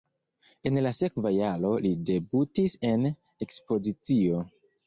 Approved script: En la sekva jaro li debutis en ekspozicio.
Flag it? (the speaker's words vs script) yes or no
no